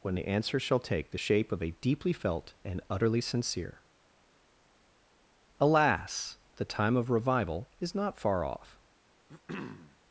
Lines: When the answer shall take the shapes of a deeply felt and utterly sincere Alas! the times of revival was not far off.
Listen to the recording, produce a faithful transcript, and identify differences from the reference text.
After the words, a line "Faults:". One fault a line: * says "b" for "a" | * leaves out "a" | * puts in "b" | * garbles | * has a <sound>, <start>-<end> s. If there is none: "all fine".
When the answer shall take the shape of a deeply felt and utterly sincere Alas! the time of revival is not far off.
Faults:
* says "shape" for "shapes"
* says "time" for "times"
* says "is" for "was"
* has a throat clearing, 9.3-10.0 s